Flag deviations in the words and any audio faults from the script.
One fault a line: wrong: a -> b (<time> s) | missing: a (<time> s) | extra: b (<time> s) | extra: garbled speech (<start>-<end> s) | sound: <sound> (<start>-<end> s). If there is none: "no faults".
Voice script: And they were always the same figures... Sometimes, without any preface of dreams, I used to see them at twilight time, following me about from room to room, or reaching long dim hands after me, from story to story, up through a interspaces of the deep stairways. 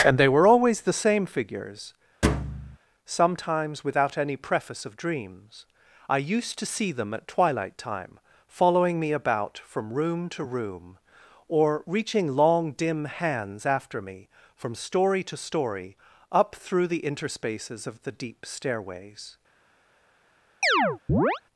sound: thud (2.2-2.8 s)
wrong: a -> the (16.9 s)
sound: chirp (20.6-21.4 s)